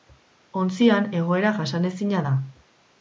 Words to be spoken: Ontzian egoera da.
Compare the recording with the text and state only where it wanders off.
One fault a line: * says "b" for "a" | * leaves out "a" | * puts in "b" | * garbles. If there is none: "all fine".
* puts in "jasanezina"